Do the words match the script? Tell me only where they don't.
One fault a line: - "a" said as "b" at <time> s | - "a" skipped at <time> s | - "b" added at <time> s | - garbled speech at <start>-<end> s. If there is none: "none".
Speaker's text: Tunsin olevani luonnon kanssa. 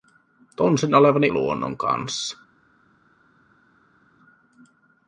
none